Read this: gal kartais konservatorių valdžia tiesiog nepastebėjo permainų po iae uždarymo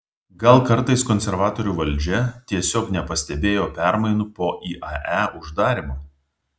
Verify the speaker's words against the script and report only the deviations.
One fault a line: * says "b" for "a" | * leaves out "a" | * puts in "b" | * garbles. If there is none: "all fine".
all fine